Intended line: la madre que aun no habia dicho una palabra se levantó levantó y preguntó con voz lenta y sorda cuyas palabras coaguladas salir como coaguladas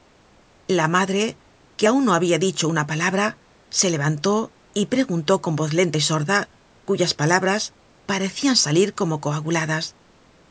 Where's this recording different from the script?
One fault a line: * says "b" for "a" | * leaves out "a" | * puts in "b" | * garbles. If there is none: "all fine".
* leaves out "levantó"
* says "parecian" for "coaguladas"